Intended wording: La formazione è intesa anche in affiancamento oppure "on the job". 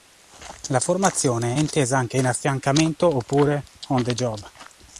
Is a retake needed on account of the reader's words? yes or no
no